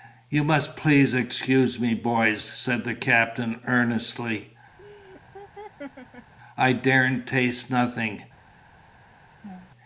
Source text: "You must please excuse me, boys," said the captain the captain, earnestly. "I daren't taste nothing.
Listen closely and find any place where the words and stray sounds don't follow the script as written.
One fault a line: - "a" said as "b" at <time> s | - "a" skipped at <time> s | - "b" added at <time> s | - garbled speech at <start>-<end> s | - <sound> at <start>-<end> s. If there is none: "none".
- "the captain" skipped at 3.6 s
- laugh at 4.8-6.3 s
- laugh at 9.4-9.7 s